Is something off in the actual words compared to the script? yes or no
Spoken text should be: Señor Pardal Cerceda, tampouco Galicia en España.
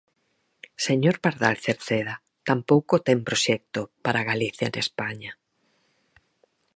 yes